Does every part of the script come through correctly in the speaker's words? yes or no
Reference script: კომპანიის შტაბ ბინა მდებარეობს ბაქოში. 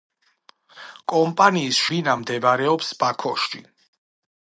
no